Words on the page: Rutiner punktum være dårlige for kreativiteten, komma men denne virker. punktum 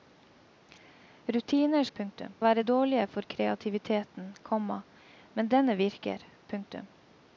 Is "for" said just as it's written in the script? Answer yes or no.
yes